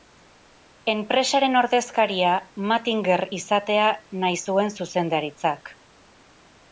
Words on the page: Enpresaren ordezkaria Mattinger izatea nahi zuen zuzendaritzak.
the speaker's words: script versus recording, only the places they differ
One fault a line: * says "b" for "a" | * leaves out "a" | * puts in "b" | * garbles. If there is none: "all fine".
all fine